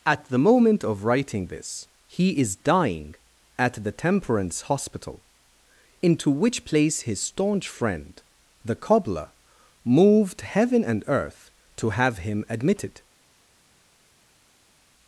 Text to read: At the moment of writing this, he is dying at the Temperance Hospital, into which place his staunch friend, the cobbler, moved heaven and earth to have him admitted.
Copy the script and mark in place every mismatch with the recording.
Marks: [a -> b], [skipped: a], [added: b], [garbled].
At the moment of writing this, he is dying at the Temperance Hospital, into which place his staunch friend, the cobbler, moved heaven and earth to have him admitted.